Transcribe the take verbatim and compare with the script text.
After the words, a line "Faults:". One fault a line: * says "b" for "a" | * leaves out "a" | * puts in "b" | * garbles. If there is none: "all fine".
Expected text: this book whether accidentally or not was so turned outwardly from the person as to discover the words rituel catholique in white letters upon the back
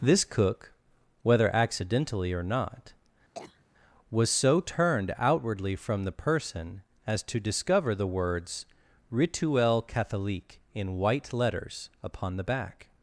this cook whether accidentally or not was so turned outwardly from the person as to discover the words rituel catholique in white letters upon the back
Faults:
* says "cook" for "book"